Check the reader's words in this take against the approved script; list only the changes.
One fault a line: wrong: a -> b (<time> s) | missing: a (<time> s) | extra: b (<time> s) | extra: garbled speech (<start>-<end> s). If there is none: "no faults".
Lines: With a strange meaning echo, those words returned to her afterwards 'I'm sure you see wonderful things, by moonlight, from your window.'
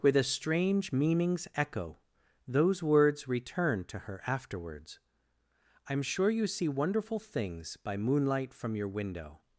wrong: meaning -> meanings (0.9 s)